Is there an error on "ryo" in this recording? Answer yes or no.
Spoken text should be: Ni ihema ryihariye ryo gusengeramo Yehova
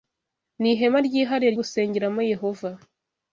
yes